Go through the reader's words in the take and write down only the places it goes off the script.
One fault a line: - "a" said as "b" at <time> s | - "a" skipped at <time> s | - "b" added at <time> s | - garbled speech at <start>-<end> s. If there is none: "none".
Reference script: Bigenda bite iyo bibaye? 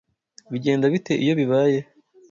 none